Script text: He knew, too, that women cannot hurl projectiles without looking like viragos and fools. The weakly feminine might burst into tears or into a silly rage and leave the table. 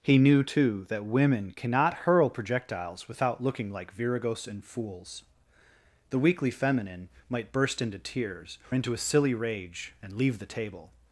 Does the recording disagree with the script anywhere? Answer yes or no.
yes